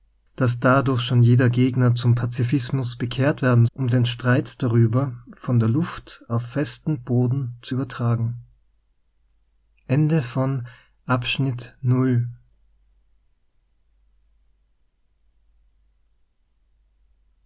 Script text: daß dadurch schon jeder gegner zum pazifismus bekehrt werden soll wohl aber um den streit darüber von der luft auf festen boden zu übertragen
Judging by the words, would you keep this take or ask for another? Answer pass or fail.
fail